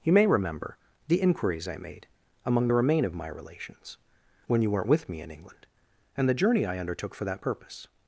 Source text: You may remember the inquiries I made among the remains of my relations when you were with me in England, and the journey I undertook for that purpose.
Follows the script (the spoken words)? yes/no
no